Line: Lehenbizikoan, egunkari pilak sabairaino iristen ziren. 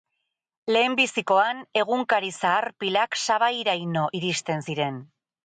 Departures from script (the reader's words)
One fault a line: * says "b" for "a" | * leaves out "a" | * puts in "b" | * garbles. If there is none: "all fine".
* puts in "zahar"